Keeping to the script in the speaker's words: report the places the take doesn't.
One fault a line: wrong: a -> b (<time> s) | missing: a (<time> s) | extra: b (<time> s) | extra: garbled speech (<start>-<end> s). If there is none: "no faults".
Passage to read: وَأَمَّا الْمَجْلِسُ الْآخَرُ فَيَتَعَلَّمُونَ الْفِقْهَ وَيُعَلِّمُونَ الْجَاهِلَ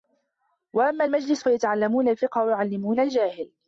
missing: الْآخَرُ (1.4 s)